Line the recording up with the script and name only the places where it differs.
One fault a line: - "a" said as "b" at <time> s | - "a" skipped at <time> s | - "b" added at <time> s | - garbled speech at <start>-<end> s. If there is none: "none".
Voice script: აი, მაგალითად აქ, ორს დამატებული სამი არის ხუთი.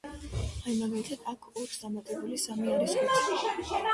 none